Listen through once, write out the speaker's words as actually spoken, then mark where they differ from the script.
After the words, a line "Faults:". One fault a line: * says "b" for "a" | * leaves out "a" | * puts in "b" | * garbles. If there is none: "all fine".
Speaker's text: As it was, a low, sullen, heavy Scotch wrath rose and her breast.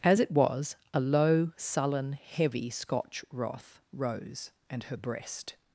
As it was, a low, sullen, heavy Scotch wrath rose and her breast.
Faults:
all fine